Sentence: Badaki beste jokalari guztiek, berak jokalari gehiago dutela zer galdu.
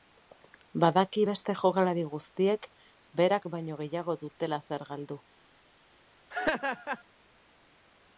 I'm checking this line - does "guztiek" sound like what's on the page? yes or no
yes